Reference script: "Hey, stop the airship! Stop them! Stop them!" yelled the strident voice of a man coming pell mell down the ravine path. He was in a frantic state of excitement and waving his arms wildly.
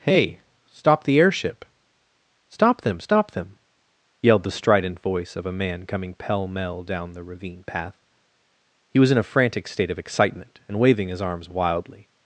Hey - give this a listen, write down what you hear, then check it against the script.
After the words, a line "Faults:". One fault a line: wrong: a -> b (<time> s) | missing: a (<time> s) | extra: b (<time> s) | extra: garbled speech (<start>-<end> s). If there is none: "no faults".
"Hey, stop the airship! Stop them! Stop them!" yelled the strident voice of a man coming pell mell down the ravine path. He was in a frantic state of excitement and waving his arms wildly.
Faults:
no faults